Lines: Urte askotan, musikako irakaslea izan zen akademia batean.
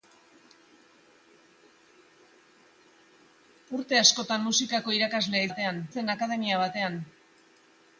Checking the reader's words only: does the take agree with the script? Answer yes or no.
no